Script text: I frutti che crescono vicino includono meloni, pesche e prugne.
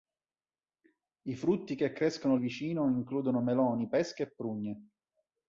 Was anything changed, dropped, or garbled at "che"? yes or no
no